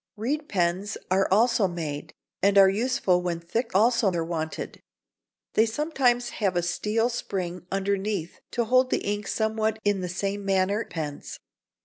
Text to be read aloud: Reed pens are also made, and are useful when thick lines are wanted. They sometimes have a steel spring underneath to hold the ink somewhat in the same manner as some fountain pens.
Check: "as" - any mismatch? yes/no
yes